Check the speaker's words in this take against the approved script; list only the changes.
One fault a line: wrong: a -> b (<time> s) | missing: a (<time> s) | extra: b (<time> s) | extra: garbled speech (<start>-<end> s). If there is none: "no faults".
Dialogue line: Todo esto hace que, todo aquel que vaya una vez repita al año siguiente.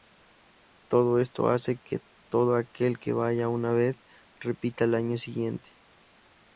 no faults